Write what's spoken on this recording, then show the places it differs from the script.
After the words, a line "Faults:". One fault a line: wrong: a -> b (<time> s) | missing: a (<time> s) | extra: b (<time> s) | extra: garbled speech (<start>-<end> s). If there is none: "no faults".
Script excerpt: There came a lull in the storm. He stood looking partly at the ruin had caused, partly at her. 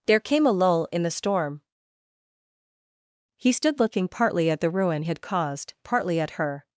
There came a lull in the storm. He stood looking partly at the ruin had caused, partly at her.
Faults:
no faults